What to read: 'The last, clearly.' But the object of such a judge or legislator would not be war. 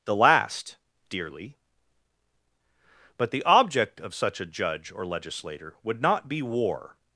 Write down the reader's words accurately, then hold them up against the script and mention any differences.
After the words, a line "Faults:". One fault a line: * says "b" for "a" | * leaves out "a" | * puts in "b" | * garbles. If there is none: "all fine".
'The last, dearly.' But the object of such a judge or legislator would not be war.
Faults:
* says "dearly" for "clearly"